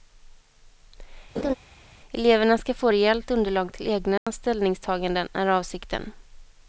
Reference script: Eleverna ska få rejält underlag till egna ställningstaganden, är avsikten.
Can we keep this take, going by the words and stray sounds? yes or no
no